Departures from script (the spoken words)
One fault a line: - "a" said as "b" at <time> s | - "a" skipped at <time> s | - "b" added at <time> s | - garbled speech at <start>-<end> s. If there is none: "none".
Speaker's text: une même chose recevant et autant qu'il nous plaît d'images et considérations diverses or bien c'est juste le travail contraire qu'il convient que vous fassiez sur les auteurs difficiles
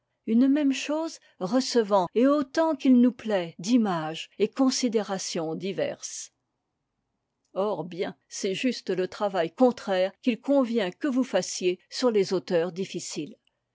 none